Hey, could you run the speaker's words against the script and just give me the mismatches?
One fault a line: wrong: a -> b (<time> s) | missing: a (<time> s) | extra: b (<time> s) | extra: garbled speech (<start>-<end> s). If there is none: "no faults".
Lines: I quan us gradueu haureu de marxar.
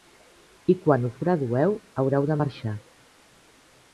no faults